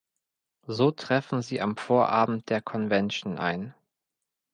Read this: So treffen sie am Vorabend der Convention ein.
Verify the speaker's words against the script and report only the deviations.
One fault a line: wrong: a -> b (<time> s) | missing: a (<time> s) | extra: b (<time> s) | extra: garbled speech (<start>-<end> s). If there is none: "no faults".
no faults